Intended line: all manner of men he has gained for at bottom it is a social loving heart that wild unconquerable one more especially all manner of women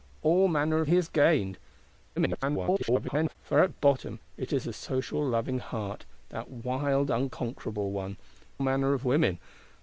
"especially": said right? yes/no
no